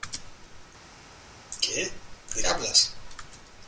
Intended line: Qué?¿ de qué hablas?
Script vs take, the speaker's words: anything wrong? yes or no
yes